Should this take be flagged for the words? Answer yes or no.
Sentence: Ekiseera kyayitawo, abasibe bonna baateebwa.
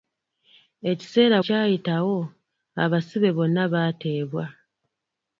no